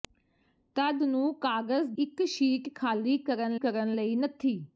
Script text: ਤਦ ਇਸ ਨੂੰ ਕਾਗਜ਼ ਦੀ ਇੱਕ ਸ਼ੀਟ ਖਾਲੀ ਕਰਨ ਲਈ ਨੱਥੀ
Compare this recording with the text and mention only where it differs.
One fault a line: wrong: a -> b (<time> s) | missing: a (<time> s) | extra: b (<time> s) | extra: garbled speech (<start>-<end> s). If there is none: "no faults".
missing: ਇਸ (1.0 s)
missing: ਦੀ (1.9 s)
extra: ਕਰਨ (3.5 s)